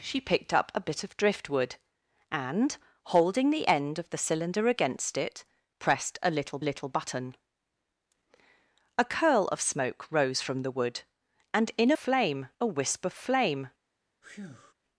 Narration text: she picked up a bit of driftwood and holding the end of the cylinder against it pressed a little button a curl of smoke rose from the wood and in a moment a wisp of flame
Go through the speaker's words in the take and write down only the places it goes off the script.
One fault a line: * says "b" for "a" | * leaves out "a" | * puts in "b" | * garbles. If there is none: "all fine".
* puts in "little"
* says "flame" for "moment"